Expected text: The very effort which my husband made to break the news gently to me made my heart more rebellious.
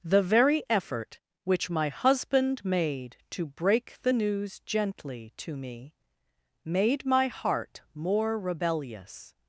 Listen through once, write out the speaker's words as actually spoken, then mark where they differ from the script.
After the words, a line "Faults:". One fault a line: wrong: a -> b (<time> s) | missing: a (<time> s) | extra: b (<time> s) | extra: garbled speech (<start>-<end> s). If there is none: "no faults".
The very effort which my husband made to break the news gently to me made my heart more rebellious.
Faults:
no faults